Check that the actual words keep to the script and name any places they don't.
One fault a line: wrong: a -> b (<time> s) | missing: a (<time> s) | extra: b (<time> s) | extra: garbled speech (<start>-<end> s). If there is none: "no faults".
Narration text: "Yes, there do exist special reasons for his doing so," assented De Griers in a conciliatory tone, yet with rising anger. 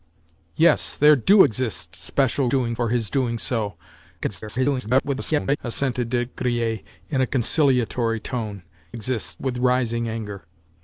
wrong: reasons -> doing (2.5 s)
extra: garbled speech (4.2-5.6 s)
wrong: yet -> exist (8.9 s)